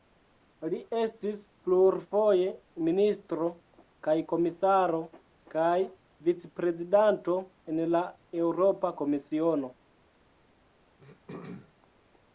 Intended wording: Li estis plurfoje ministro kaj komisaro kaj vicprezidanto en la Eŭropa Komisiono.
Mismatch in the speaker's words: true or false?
false